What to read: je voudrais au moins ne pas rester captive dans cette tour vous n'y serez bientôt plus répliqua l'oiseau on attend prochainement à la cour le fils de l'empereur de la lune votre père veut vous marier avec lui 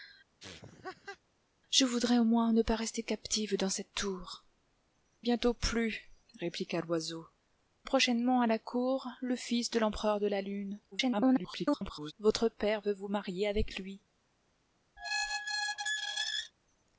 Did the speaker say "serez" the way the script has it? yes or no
no